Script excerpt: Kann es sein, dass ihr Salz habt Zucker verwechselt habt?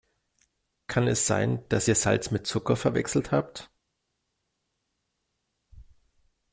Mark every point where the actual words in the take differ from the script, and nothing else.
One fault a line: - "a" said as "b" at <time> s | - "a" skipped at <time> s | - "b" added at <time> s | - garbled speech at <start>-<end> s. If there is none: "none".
- "habt" said as "mit" at 2.3 s